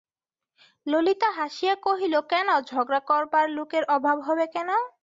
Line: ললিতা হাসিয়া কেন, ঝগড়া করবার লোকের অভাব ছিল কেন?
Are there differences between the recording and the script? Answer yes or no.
yes